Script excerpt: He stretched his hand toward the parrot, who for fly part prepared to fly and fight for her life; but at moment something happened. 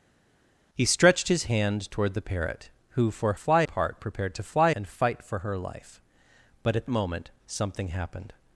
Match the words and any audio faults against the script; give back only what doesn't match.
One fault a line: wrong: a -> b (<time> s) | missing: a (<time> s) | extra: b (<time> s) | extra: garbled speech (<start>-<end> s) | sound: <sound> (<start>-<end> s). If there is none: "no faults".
no faults